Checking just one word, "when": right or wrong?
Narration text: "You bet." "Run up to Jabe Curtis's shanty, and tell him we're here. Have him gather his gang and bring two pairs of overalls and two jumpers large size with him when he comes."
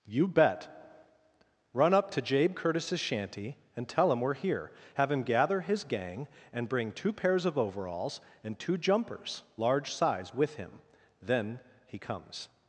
wrong